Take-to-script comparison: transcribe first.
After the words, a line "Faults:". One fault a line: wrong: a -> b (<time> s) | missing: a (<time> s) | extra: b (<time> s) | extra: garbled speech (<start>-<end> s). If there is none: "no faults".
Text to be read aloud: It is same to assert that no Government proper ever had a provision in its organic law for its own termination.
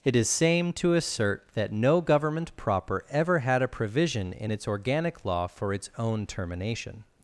It is same to assert that no Government proper ever had a provision in its organic law for its own termination.
Faults:
no faults